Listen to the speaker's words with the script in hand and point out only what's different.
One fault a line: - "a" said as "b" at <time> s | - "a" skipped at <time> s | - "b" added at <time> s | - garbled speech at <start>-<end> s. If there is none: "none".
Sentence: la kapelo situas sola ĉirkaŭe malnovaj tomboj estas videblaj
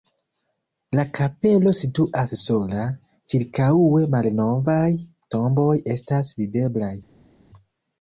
none